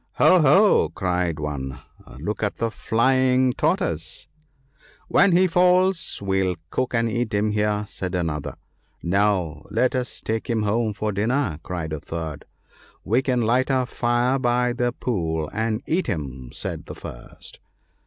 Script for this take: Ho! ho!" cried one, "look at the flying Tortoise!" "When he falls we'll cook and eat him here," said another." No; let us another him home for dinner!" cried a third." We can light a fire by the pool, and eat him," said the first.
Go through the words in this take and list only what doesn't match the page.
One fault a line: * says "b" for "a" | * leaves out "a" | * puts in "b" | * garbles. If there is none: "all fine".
* says "take" for "another"